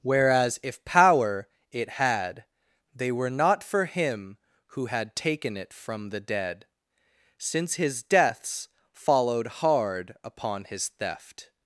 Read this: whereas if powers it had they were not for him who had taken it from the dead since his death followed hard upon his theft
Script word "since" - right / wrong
right